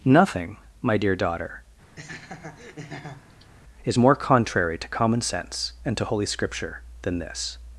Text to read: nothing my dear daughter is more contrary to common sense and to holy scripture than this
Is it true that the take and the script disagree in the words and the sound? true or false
true